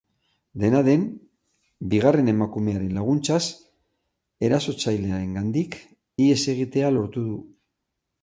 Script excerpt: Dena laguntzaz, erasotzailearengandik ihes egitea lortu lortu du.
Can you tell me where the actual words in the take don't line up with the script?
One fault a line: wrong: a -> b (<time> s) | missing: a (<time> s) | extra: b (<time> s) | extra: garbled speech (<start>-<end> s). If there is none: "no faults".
extra: den bigarren emakumearen (0.8 s)
missing: lortu (7.2 s)